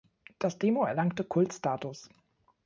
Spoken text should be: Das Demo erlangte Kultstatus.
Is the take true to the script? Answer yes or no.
yes